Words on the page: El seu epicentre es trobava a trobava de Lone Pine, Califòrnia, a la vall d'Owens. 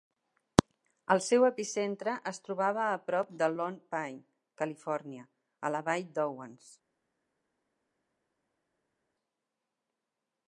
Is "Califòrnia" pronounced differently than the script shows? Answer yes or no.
no